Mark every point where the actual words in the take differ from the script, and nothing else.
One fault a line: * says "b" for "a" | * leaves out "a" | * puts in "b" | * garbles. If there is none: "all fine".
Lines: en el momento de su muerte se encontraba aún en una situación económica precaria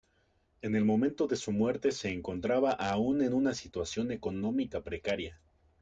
all fine